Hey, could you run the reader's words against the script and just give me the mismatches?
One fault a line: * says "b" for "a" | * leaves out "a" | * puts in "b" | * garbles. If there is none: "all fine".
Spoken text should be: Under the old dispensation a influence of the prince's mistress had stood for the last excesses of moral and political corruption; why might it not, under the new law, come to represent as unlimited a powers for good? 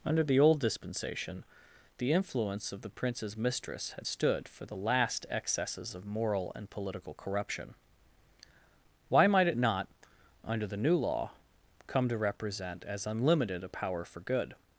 * says "the" for "a"
* says "power" for "powers"